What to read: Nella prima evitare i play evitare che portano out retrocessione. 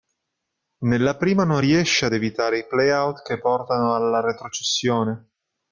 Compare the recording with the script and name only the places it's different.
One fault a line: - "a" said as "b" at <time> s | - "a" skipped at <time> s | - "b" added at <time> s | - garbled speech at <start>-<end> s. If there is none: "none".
- "non riesce ad" added at 1.4 s
- "evitare" said as "out" at 2.9 s
- "out" said as "alla" at 3.9 s